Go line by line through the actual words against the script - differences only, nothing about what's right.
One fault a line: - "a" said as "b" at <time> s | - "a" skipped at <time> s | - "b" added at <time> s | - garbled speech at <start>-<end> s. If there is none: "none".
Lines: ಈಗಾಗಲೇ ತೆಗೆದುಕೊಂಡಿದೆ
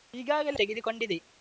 none